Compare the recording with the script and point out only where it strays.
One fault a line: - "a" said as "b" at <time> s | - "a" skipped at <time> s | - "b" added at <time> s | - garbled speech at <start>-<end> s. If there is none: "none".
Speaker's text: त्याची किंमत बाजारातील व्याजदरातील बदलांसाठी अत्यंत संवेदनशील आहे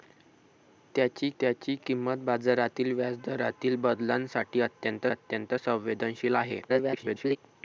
- "त्याची" added at 1.4 s
- "अत्यंत" added at 5.1 s
- garbled speech at 6.7-7.4 s